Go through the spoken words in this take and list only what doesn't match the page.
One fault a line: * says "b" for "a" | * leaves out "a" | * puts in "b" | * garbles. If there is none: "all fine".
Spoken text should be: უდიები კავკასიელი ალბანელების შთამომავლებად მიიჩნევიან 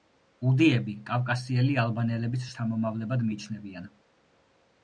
all fine